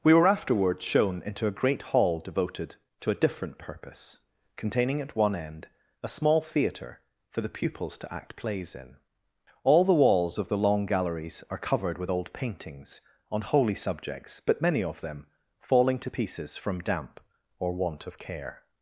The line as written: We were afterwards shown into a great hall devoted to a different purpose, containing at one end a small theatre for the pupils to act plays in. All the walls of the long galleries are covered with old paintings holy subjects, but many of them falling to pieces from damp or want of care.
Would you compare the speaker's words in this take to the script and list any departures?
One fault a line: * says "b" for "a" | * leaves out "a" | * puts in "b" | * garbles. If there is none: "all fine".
* puts in "on"